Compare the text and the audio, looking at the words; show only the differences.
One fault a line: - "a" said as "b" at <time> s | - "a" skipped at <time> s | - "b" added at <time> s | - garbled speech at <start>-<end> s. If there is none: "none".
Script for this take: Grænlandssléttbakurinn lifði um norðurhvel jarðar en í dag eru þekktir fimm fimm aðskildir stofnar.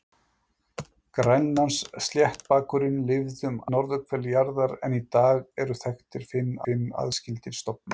none